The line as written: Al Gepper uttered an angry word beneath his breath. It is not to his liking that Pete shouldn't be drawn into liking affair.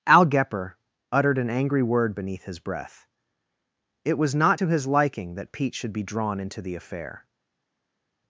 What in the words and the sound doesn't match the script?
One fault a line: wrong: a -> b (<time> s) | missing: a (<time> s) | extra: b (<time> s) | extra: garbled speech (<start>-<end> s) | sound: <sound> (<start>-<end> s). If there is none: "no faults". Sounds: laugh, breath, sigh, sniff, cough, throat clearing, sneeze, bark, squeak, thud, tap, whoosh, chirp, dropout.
wrong: is -> was (4.2 s)
wrong: shouldn't -> should (5.7 s)
wrong: liking -> the (6.6 s)